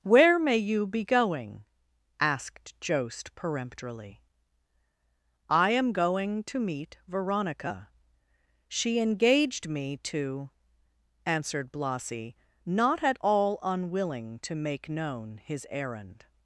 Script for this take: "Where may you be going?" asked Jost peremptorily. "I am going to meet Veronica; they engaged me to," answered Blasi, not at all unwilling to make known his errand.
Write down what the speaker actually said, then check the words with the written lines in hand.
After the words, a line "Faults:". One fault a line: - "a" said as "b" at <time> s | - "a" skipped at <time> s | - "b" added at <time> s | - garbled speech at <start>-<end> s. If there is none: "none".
"Where may you be going?" asked Jost peremptorily. "I am going to meet Veronica; she engaged me to," answered Blasi, not at all unwilling to make known his errand.
Faults:
- "they" said as "she" at 8.7 s